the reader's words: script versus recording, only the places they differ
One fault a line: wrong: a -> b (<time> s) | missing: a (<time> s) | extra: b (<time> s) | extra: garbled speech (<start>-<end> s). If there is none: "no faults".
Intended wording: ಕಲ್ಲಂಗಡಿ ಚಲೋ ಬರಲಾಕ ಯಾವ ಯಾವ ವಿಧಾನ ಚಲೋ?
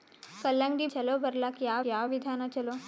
no faults